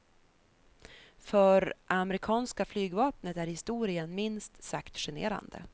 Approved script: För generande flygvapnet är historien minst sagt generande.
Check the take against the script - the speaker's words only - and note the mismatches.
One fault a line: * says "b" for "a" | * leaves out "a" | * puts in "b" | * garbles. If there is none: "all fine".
* says "amerikanska" for "generande"